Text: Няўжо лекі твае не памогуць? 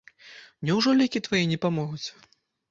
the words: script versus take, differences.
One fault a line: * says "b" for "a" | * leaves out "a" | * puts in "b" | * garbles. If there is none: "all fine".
all fine